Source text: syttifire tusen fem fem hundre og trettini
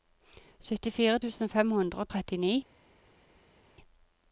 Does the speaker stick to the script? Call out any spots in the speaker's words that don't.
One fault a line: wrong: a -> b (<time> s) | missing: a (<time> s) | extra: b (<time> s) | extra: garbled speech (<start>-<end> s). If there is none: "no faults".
missing: fem (1.7 s)